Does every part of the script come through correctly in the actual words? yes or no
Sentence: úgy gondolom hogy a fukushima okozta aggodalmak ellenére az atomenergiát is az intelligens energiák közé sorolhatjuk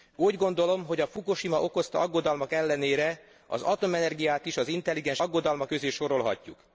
no